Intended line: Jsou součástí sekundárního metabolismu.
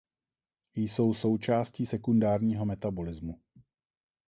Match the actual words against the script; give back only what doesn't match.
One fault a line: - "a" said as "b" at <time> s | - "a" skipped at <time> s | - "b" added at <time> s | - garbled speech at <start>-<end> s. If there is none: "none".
none